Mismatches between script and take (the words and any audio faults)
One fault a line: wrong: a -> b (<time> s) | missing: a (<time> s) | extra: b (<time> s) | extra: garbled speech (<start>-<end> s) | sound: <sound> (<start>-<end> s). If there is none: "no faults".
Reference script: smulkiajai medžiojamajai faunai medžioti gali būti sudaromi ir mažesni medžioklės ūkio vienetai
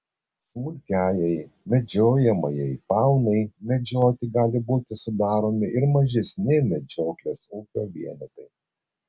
no faults